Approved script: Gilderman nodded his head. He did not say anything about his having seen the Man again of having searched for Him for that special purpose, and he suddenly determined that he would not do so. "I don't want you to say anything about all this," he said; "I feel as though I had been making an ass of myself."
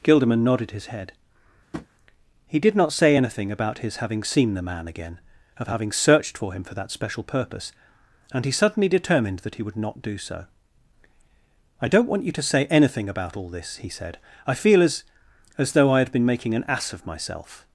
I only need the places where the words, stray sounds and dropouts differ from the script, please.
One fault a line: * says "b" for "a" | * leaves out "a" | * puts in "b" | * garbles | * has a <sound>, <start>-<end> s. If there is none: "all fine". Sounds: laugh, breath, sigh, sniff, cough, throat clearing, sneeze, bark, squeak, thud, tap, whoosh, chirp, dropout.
* has a tap, 1.7-1.9 s
* puts in "as"